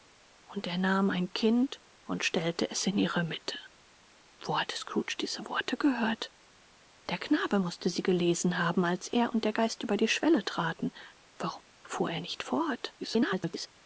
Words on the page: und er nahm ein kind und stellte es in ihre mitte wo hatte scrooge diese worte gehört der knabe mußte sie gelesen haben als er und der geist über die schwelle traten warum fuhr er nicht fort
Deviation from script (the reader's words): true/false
true